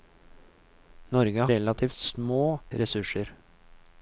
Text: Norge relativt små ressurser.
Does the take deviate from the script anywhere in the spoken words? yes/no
no